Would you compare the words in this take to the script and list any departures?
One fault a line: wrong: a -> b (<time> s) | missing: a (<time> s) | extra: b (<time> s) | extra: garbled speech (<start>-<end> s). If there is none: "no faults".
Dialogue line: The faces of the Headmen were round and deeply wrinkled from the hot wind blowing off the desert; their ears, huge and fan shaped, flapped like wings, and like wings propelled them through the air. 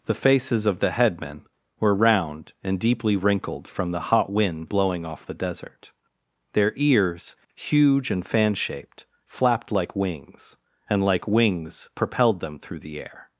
no faults